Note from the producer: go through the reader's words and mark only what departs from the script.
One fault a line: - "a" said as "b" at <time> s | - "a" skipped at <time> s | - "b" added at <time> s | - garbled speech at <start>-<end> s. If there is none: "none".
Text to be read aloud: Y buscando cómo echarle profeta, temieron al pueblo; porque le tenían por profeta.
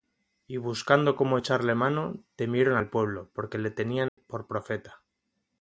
- "profeta" said as "mano" at 1.7 s